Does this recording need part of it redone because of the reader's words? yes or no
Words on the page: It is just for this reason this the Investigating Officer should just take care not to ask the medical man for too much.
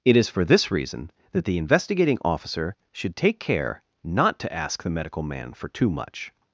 yes